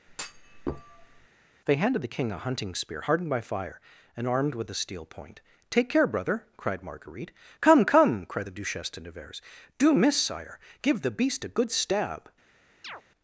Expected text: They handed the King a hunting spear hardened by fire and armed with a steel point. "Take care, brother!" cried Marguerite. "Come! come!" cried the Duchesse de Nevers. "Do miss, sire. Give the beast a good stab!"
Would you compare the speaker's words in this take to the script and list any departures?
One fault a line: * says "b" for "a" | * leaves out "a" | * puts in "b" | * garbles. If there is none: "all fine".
all fine